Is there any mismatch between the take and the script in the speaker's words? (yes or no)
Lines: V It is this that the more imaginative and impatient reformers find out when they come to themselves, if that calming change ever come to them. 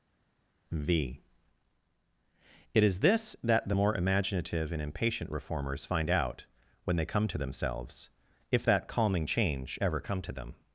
no